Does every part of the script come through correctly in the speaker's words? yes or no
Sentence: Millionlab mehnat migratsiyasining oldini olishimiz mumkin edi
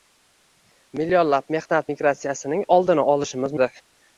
no